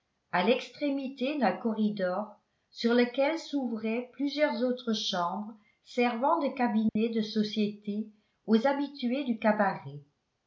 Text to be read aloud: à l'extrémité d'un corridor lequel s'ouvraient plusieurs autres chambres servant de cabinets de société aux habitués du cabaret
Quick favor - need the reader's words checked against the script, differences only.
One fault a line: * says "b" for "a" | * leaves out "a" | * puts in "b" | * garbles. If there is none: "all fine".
* puts in "sur"